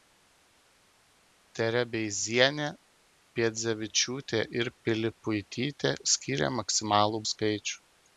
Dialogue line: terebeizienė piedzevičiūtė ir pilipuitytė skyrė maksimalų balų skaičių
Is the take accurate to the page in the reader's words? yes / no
no